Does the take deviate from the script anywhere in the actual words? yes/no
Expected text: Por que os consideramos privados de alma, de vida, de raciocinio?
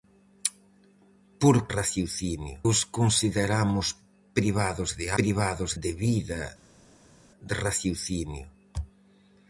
yes